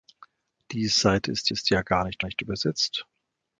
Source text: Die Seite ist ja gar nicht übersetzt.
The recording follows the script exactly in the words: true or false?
false